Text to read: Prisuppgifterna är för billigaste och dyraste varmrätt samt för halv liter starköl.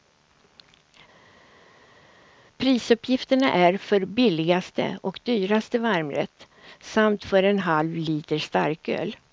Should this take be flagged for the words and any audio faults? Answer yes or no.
yes